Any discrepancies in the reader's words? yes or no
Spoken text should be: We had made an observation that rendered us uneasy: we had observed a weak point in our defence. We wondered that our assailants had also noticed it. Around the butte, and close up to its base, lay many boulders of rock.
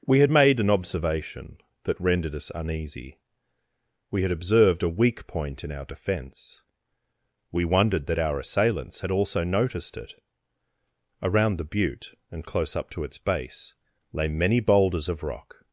no